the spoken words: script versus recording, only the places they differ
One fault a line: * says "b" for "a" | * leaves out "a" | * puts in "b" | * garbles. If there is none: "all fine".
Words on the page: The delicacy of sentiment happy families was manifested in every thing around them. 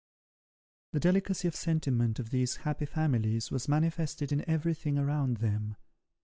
* puts in "of these"